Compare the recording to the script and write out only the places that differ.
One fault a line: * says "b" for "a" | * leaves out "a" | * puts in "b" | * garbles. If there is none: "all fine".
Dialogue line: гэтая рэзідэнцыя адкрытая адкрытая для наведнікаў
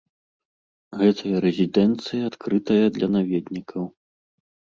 * leaves out "адкрытая"